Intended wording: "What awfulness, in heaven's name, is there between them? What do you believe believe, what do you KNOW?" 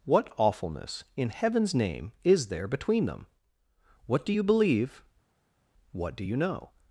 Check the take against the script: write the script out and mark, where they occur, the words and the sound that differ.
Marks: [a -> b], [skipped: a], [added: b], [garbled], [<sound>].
"What awfulness, in heaven's name, is there between them? What do you believe [skipped: believe,] what do you KNOW?"